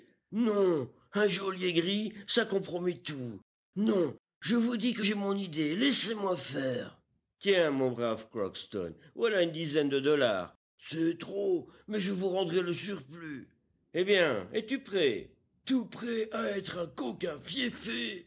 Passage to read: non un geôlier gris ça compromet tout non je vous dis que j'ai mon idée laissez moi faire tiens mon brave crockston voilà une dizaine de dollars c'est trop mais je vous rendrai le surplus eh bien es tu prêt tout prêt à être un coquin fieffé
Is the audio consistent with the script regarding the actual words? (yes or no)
yes